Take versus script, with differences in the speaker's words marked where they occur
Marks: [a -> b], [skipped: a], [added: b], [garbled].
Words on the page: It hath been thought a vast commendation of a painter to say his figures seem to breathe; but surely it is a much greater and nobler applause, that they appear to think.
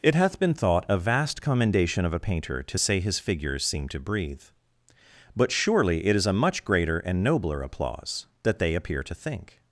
It hath been thought a vast commendation of a painter to say his figures seem to breathe; but surely it is a much greater and nobler applause, that they appear to think.